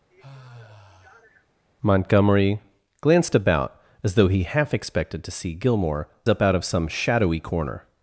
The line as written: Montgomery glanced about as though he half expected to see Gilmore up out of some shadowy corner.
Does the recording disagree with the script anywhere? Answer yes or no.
no